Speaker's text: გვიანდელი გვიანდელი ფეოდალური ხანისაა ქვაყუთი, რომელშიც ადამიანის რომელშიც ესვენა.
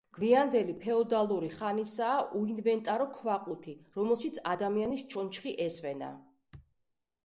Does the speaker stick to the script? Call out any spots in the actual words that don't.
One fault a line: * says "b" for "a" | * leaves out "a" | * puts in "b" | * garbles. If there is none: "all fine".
* leaves out "გვიანდელი"
* puts in "უინვენტარო"
* says "ჩონჩხი" for "რომელშიც"